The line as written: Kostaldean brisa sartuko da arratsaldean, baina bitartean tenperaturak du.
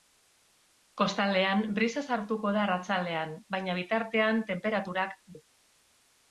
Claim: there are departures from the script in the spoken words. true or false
false